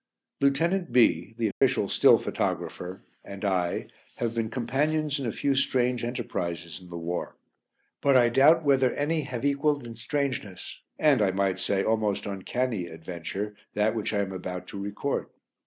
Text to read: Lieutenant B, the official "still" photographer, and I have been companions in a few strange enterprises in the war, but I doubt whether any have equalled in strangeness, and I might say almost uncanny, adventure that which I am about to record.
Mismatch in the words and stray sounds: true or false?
true